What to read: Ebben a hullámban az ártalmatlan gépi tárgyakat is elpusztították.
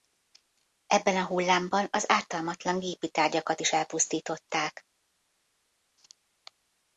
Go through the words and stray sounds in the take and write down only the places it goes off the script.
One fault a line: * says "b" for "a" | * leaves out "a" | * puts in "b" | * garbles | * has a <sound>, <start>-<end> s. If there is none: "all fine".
all fine